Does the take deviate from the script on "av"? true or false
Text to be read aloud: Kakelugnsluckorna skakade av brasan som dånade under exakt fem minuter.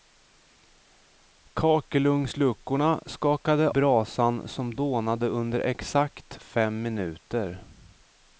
true